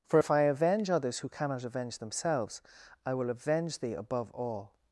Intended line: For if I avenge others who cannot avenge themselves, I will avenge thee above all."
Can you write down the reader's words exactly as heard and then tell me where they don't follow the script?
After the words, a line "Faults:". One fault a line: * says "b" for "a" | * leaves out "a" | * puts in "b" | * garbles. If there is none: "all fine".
For if I avenge others who cannot avenge themselves, I will avenge thee above all."
Faults:
all fine